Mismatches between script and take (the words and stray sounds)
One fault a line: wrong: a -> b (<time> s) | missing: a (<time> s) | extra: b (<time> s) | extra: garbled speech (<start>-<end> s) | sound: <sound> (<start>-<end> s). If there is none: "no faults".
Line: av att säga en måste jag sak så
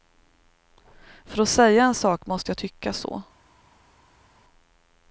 wrong: av -> för (1.2 s)
extra: sak (1.9 s)
wrong: sak -> tycka (2.5 s)